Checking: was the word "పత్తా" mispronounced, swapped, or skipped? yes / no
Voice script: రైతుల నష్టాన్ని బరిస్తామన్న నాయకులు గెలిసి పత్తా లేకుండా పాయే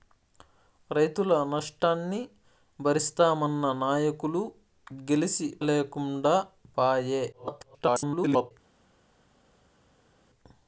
yes